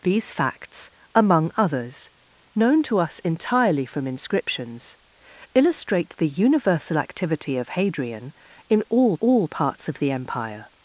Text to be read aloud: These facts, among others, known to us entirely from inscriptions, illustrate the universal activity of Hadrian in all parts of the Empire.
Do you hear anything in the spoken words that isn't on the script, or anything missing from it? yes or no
yes